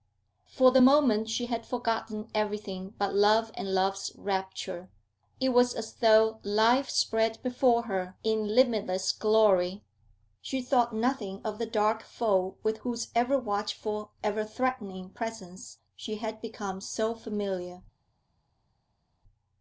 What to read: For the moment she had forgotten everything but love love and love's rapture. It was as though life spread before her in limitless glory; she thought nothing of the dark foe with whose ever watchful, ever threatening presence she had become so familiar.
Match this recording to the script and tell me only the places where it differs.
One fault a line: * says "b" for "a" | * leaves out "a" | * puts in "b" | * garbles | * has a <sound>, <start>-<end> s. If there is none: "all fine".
* leaves out "love"